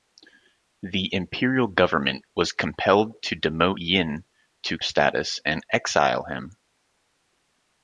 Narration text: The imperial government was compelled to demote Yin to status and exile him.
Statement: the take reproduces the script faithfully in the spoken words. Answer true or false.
true